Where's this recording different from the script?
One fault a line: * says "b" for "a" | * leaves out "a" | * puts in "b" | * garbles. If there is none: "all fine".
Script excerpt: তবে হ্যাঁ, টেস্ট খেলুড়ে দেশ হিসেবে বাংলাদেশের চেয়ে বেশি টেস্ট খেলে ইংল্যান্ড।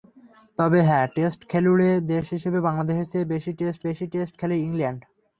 * puts in "বেশি টেস্ট"